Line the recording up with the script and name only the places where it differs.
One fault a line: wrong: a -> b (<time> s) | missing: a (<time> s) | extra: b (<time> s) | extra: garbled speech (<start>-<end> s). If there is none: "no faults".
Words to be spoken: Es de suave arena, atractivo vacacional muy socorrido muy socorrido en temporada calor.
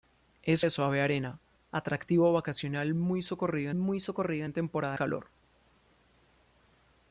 no faults